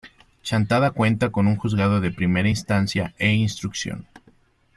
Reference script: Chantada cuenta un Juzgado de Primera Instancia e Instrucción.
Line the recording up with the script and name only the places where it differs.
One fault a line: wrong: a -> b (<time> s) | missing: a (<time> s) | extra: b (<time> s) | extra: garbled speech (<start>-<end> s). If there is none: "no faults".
extra: con (1.3 s)